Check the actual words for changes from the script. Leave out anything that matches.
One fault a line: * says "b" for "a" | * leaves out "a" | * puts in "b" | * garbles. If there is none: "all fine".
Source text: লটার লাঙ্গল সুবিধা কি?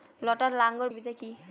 all fine